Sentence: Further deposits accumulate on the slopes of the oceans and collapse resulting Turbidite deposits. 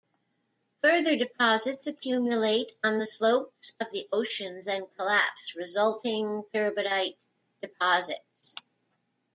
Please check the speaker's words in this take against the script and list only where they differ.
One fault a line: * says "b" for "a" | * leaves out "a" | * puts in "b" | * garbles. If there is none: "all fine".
all fine